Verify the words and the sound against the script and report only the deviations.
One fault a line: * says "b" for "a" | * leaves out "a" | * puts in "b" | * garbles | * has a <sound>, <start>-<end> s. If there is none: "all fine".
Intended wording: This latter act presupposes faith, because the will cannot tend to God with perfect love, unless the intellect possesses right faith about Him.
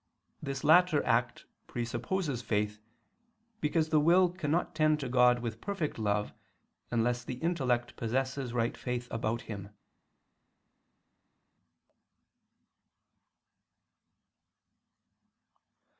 all fine